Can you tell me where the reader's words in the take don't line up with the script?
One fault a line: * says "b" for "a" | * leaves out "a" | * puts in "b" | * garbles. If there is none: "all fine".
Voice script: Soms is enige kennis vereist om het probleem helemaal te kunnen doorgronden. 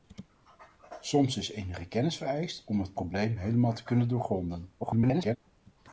* garbles